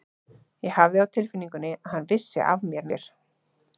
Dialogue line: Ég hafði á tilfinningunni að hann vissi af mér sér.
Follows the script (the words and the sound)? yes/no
yes